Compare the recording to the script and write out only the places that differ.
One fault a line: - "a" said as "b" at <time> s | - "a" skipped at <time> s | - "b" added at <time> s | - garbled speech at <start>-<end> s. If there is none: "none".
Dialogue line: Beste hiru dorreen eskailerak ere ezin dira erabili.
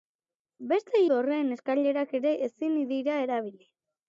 - "hiru" skipped at 1.0 s